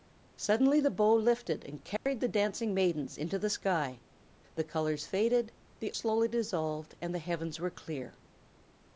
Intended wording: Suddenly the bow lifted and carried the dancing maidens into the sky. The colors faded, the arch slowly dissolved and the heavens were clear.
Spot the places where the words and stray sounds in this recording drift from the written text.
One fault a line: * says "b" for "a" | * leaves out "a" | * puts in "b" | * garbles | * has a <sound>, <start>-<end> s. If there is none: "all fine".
* has a dropout, 2.0-2.1 s
* leaves out "arch"